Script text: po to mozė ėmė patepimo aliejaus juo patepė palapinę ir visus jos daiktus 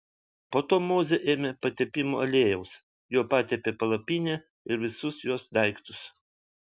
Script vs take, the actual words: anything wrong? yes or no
no